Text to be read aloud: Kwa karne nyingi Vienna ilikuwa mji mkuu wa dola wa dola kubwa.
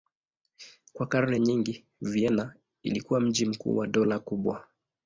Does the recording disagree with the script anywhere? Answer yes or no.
yes